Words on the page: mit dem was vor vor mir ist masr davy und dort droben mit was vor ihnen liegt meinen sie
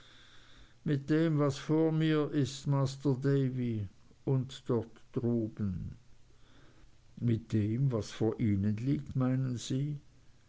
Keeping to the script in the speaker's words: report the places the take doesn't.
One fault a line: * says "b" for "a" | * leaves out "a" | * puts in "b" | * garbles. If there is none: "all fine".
* leaves out "vor"
* puts in "dem"